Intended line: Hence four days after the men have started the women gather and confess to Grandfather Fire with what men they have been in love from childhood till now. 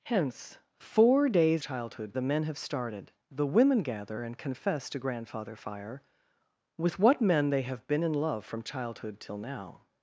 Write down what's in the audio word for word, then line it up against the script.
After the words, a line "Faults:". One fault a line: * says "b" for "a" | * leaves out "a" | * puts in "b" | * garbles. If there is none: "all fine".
Hence four days childhood the men have started the women gather and confess to Grandfather Fire with what men they have been in love from childhood till now.
Faults:
* says "childhood" for "after"